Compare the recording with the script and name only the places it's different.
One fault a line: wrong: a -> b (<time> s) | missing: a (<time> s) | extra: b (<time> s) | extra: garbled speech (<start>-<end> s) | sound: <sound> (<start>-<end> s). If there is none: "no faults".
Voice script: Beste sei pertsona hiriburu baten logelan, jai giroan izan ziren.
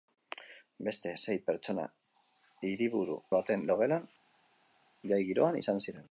no faults